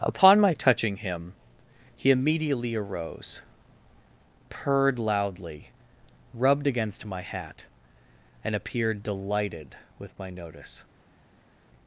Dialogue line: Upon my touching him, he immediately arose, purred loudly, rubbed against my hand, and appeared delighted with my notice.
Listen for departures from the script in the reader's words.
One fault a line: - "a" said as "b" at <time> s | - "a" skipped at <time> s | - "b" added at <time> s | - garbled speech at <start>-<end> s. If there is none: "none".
- "hand" said as "hat" at 7.2 s